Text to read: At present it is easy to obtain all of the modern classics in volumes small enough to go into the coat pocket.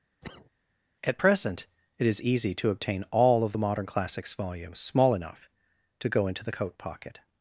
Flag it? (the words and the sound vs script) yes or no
yes